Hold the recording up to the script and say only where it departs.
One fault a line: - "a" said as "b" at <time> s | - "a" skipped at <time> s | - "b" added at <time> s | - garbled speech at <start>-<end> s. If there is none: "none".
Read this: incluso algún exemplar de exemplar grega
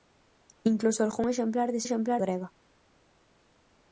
none